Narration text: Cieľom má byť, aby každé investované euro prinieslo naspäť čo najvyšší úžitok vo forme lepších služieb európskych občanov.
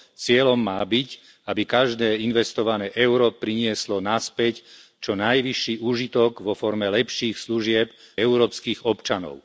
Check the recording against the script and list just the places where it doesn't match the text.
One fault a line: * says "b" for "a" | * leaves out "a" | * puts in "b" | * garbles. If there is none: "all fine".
all fine